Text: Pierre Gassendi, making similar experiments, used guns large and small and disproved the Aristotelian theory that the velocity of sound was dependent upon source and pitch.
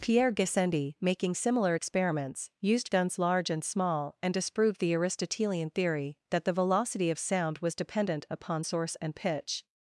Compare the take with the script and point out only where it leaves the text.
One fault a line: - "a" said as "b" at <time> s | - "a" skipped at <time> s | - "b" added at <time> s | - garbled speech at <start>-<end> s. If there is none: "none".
none